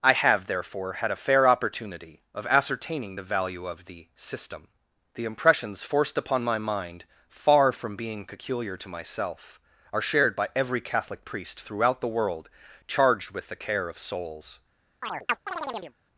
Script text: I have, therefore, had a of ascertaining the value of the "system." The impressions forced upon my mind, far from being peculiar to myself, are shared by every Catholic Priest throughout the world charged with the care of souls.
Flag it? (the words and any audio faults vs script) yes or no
yes